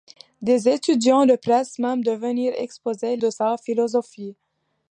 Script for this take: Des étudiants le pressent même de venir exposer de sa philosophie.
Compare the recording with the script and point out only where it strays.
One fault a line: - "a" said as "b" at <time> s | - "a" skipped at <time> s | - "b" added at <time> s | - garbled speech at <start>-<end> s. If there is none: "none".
none